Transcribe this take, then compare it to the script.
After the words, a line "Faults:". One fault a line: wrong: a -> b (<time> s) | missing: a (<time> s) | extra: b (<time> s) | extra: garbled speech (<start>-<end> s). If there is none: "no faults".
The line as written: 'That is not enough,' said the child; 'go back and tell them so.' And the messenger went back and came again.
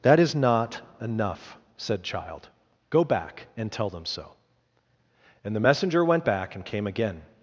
'That is not enough,' said child; 'go back and tell them so.' And the messenger went back and came again.
Faults:
missing: the (2.0 s)